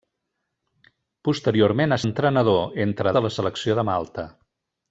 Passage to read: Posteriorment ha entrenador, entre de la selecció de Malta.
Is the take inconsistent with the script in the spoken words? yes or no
no